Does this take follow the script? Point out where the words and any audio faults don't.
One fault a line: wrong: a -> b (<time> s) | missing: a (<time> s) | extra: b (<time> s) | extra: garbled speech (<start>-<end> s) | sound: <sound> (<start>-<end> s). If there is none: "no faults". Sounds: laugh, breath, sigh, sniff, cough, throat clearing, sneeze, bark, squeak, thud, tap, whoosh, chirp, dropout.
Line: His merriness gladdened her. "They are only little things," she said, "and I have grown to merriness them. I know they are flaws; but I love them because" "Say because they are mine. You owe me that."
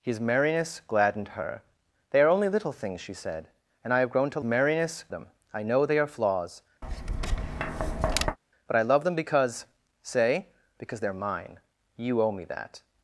sound: tap (6.8-8.4 s)